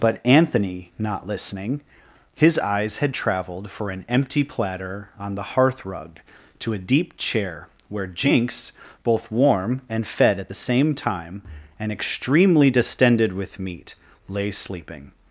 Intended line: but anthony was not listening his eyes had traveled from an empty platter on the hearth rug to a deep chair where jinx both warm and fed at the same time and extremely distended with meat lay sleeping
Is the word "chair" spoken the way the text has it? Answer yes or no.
yes